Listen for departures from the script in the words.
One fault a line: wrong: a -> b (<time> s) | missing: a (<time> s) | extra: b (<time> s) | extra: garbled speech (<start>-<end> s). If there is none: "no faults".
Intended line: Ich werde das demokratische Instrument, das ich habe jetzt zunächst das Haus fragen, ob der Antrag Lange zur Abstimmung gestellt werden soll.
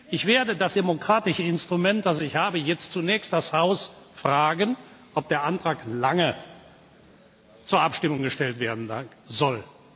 no faults